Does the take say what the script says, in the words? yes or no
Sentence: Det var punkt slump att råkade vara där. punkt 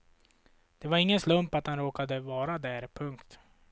no